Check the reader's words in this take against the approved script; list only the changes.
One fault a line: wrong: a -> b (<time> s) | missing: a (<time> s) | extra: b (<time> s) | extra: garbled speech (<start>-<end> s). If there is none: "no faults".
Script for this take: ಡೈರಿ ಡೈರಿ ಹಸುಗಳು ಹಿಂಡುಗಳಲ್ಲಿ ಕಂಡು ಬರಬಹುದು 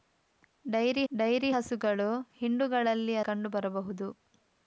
no faults